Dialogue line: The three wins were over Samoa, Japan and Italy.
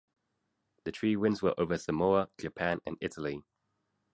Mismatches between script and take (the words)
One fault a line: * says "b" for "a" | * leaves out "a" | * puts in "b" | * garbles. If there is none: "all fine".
all fine